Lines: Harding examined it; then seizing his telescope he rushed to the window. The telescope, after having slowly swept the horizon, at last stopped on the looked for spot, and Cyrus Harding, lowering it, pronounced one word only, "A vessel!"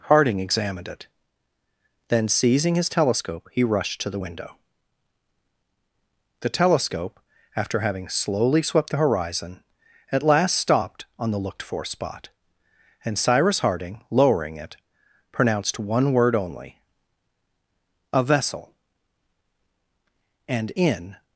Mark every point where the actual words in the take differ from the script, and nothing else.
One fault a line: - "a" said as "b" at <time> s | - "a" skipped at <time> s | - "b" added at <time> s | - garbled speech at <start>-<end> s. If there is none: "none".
- "And in" added at 20.5 s